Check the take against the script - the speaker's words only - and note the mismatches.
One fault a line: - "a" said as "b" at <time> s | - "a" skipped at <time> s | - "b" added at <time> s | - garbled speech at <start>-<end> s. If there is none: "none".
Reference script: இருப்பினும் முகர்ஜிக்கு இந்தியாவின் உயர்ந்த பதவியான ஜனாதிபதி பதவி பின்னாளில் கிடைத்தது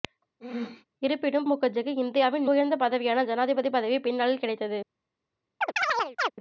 none